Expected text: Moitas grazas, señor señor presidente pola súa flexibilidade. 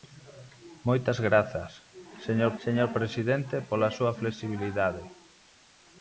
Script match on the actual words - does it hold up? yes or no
yes